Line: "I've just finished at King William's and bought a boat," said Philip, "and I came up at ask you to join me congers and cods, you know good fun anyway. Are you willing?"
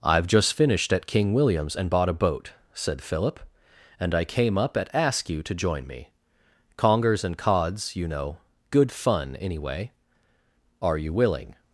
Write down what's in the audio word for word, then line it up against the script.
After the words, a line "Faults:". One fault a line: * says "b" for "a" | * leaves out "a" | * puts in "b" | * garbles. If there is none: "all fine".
"I've just finished at King William's and bought a boat," said Philip, "and I came up at ask you to join me congers and cods, you know good fun anyway. Are you willing?"
Faults:
all fine